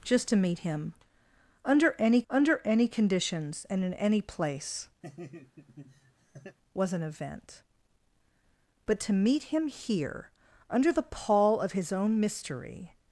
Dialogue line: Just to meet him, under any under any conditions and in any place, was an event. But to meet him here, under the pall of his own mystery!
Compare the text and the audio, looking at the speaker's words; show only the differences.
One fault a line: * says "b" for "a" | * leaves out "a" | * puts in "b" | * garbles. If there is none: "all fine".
all fine